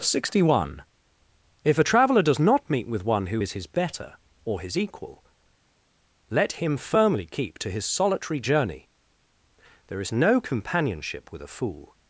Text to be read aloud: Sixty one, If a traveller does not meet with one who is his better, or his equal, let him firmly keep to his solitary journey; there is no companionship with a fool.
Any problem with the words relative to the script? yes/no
no